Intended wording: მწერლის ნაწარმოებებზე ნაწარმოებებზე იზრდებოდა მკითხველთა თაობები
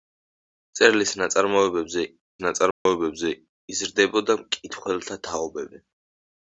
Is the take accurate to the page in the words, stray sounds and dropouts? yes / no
no